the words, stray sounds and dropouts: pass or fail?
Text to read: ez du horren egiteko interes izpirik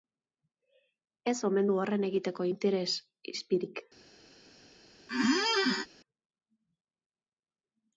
fail